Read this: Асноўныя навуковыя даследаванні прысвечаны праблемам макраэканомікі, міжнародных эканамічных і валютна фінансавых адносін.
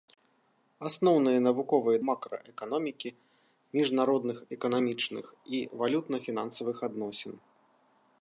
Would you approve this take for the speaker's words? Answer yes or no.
no